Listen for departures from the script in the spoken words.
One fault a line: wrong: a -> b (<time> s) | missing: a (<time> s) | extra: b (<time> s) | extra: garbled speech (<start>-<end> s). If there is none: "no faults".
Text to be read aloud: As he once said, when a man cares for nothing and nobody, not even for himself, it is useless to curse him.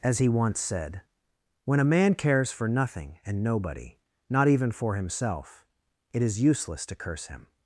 no faults